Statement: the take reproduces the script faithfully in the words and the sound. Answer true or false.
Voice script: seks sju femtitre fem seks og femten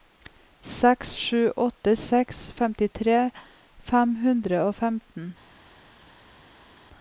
false